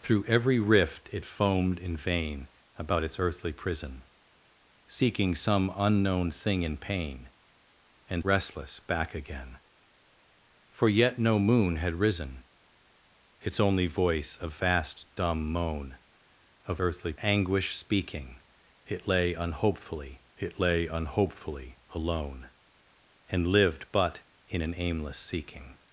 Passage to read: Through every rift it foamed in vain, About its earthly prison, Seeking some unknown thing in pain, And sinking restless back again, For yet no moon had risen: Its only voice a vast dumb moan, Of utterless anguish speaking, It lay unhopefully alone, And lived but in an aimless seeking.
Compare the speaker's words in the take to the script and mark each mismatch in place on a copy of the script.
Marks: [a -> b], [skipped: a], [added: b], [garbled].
Through every rift it foamed in vain, About its earthly prison, Seeking some unknown thing in pain, And [skipped: sinking] restless back again, For yet no moon had risen: Its only voice a vast dumb moan, Of [utterless -> earthly] anguish speaking, It lay unhopefully [added: It lay unhopefully] alone, And lived but in an aimless seeking.